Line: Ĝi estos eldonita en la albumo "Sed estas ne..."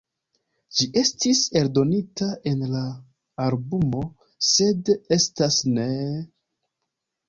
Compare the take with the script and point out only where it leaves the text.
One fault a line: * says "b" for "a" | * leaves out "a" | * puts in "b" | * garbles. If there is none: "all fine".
* says "estis" for "estos"